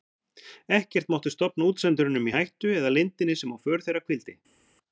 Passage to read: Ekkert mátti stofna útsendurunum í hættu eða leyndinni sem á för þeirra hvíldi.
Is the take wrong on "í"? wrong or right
right